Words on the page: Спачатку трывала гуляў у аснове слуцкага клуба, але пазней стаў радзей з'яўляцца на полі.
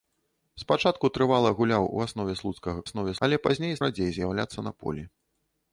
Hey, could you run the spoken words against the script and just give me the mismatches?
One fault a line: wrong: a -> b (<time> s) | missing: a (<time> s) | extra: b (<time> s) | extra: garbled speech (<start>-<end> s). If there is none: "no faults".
wrong: клуба -> аснове (2.9 s)
missing: стаў (3.7 s)